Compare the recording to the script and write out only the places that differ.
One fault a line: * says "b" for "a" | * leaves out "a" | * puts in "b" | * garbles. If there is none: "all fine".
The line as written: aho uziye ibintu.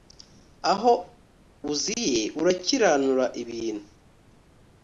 * puts in "urakiranura"